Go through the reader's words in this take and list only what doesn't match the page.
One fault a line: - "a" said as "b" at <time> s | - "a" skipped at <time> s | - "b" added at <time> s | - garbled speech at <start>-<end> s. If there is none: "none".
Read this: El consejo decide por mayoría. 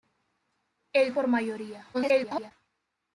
- "consejo decide" skipped at 1.1 s
- garbled speech at 1.9-2.5 s